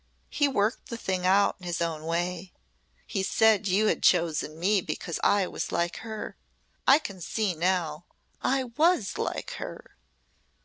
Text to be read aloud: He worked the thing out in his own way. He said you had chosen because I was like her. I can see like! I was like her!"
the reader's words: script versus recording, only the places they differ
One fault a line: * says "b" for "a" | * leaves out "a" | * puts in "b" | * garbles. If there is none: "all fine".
* puts in "me"
* says "now" for "like"